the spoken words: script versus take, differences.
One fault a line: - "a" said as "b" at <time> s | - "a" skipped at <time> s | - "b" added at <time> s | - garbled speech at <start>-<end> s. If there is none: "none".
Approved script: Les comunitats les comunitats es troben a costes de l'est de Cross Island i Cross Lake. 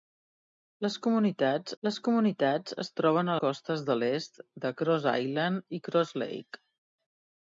none